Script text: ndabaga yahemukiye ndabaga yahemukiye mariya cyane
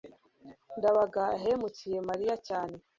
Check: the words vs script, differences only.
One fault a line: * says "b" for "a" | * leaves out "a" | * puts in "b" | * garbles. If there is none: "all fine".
* leaves out "ndabaga yahemukiye"